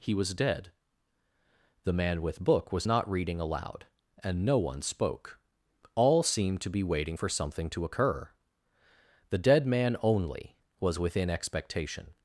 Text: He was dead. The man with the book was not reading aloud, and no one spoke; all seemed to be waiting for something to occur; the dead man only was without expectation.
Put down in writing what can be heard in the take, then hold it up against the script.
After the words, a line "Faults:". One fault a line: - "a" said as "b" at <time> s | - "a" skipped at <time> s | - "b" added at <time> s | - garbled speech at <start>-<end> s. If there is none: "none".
He was dead. The man with book was not reading aloud, and no one spoke; all seemed to be waiting for something to occur; the dead man only was within expectation.
Faults:
- "the" skipped at 2.4 s
- "without" said as "within" at 11.0 s